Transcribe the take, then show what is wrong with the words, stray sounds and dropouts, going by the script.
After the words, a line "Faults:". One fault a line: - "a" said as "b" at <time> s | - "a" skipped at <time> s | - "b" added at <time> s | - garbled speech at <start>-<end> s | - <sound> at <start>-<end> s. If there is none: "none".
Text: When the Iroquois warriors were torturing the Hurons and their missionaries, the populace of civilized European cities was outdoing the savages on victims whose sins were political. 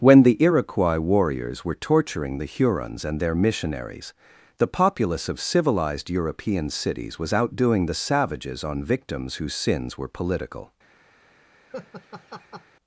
When the Iroquois warriors were torturing the Hurons and their missionaries, the populace of civilized European cities was outdoing the savages on victims whose sins were political.
Faults:
- laugh at 11.7-12.6 s